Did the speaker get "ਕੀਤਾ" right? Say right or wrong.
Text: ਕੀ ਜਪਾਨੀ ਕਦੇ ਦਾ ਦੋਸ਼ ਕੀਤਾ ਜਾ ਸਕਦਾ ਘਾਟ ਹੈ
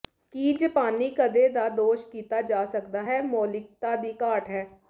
right